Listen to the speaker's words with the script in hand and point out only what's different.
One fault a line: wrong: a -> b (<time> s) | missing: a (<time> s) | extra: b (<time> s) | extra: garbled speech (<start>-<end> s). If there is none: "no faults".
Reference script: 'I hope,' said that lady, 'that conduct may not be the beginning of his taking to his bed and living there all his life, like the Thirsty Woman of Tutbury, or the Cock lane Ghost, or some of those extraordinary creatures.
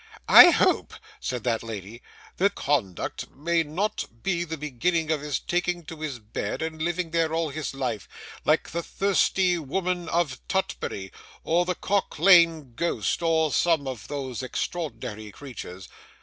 no faults